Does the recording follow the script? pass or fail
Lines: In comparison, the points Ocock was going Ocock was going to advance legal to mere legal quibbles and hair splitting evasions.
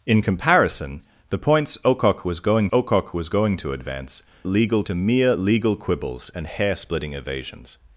pass